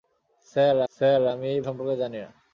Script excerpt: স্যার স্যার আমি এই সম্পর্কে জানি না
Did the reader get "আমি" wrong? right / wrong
right